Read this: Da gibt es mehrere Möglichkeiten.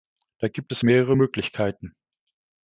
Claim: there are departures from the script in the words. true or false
false